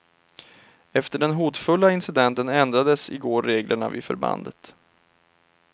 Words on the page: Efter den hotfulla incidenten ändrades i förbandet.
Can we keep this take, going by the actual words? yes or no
no